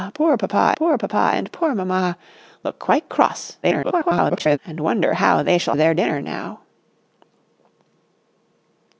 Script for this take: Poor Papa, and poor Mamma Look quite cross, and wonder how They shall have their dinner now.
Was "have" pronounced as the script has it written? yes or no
no